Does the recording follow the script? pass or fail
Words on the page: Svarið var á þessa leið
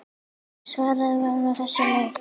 pass